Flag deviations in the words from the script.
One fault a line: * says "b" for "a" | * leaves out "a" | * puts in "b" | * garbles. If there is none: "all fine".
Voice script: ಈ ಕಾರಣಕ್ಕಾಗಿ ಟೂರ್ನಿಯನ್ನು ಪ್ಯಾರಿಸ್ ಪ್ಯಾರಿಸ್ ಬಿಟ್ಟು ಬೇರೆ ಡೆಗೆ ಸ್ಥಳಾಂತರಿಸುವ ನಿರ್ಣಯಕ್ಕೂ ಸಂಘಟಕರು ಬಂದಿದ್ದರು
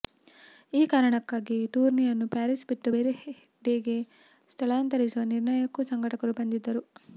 * leaves out "ಪ್ಯಾರಿಸ್"